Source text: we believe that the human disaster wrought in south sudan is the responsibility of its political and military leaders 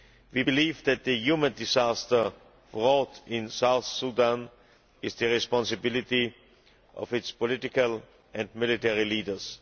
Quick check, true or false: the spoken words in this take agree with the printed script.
true